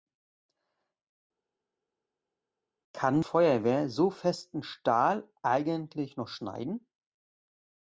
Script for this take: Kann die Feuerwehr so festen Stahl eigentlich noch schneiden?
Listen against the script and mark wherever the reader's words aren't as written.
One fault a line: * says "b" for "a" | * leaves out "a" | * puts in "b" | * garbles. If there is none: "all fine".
* leaves out "die"